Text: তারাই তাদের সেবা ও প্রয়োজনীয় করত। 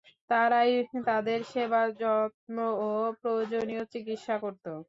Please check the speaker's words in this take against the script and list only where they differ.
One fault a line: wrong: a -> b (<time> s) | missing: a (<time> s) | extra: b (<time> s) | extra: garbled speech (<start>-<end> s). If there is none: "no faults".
extra: যত্ন (2.0 s)
extra: চিকিৎসা (3.9 s)